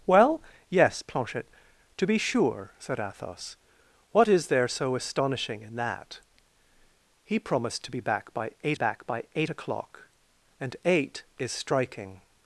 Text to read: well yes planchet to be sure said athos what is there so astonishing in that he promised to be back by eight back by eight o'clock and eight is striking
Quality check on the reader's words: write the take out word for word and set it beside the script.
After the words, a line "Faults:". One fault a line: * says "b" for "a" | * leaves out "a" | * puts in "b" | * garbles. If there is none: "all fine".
well yes planchet to be sure said athos what is there so astonishing in that he promised to be back by eight back by eight o'clock and eight is striking
Faults:
all fine